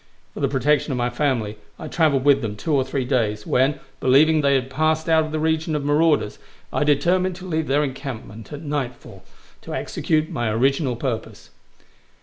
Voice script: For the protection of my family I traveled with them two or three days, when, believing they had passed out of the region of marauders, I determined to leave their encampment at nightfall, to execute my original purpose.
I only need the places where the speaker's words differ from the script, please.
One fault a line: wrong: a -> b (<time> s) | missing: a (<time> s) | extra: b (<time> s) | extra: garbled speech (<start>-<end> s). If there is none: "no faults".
no faults